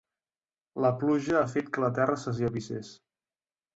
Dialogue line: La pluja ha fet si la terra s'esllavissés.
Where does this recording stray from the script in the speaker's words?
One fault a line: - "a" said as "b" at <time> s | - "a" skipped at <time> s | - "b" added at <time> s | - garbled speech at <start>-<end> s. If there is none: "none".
- "si" said as "que" at 1.7 s